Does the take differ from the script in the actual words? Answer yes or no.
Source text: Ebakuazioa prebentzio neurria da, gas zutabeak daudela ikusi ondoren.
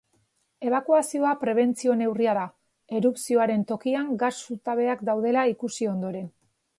yes